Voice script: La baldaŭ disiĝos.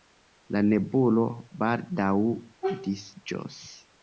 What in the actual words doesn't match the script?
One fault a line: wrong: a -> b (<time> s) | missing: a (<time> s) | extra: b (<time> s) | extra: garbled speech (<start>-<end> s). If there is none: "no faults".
extra: nebulo (0.7 s)